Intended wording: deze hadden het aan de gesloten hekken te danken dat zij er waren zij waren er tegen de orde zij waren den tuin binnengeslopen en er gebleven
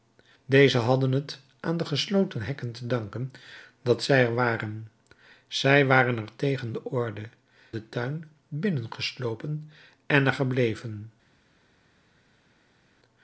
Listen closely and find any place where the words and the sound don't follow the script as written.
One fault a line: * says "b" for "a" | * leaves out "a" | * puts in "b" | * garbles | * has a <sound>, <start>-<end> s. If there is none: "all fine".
* leaves out "zij waren"